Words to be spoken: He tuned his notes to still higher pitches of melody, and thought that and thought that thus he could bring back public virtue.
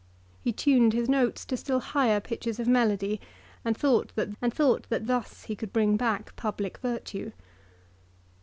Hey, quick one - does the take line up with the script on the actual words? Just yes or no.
yes